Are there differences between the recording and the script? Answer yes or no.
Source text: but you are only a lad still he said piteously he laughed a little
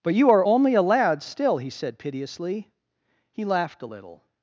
no